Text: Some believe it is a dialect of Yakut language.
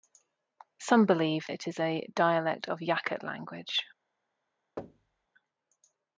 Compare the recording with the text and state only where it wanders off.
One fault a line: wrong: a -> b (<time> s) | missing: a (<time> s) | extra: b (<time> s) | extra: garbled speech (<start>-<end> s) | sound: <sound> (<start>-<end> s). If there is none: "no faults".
sound: thud (4.8-5.3 s)